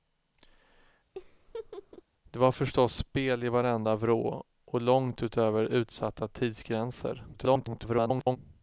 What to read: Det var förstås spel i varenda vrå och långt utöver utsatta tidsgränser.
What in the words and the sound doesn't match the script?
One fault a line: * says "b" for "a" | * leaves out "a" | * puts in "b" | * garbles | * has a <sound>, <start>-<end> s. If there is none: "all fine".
* has a laugh, 1.1-2.0 s
* garbles